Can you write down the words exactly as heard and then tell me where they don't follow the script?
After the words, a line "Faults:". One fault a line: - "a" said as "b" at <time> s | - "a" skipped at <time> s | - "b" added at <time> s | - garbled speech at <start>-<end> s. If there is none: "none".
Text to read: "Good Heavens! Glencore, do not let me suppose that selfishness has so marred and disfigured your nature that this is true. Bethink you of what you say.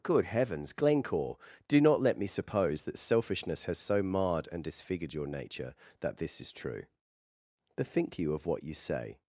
"Good Heavens! Glencore, do not let me suppose that selfishness has so marred and disfigured your nature that this is true. Bethink you of what you say.
Faults:
none